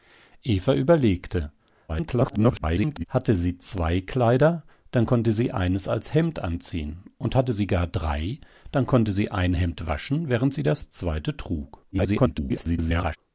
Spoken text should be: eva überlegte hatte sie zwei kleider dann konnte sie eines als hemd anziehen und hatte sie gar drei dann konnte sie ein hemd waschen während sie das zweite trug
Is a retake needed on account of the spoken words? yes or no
yes